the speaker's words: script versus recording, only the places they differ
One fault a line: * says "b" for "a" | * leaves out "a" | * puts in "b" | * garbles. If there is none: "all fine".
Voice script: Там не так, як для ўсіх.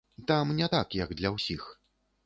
all fine